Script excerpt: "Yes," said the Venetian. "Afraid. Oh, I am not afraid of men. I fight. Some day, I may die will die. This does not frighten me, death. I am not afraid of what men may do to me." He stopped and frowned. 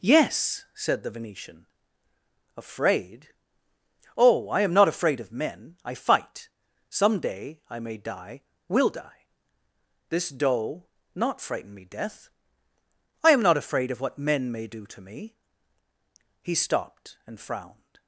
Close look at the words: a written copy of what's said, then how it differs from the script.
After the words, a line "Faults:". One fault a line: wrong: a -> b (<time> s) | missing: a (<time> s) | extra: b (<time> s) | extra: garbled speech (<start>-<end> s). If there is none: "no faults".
"Yes," said the Venetian. "Afraid. Oh, I am not afraid of men. I fight. Some day, I may die will die. This doe not frighten me, death. I am not afraid of what men may do to me." He stopped and frowned.
Faults:
wrong: does -> doe (10.3 s)